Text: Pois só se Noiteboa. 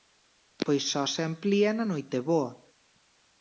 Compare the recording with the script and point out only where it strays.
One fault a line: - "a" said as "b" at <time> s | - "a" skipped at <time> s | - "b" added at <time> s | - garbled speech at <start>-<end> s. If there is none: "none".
- "amplía na" added at 1.3 s